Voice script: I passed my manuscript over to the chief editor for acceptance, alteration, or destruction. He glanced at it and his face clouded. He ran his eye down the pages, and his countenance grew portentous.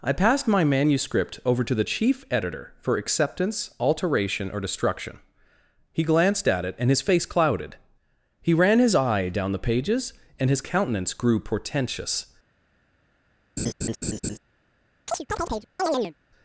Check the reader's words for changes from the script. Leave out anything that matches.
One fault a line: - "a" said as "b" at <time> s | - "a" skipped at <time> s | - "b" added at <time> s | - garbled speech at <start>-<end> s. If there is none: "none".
none